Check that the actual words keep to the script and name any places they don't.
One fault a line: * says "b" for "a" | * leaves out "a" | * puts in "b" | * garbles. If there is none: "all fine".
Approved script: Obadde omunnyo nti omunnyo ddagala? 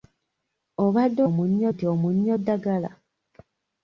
all fine